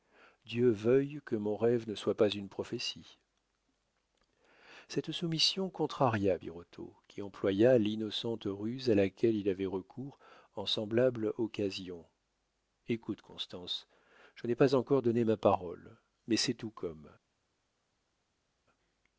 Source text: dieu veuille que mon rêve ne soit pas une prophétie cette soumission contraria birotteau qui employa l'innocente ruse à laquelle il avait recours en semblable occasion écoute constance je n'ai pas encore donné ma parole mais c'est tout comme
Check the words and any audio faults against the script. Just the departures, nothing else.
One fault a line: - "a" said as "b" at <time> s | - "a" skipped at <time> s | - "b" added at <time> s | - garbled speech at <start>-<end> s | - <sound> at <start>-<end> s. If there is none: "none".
none